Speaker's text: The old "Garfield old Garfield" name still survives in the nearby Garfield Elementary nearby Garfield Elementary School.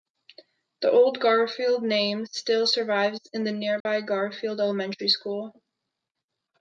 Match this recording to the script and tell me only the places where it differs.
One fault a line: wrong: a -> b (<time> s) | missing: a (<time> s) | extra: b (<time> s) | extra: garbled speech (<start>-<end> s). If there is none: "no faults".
missing: old Garfield (1.8 s)
missing: nearby Garfield Elementary (5.1 s)